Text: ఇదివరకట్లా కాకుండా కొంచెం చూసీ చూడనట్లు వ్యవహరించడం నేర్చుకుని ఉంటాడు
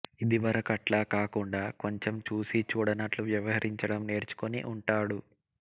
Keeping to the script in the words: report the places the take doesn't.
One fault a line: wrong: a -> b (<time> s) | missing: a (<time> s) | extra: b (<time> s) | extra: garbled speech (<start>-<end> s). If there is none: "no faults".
no faults